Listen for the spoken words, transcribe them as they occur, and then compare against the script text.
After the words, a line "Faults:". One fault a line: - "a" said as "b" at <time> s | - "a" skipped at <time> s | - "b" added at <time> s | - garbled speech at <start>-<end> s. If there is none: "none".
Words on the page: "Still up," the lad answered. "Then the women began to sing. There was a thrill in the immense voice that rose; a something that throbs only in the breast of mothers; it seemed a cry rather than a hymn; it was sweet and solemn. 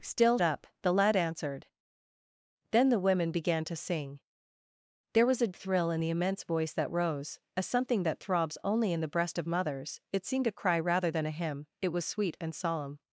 "Still up," the lad answered. "Then the women began to sing. There was a thrill in the immense voice that rose; a something that throbs only in the breast of mothers; it seemed a cry rather than a hymn; it was sweet and solemn.
Faults:
none